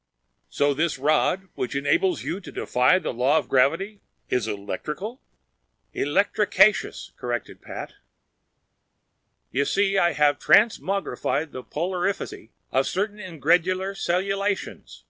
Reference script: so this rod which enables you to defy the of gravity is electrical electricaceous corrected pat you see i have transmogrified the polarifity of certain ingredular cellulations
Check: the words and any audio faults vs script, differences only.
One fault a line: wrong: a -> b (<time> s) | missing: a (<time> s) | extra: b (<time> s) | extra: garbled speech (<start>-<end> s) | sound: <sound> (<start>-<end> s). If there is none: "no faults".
extra: law (3.1 s)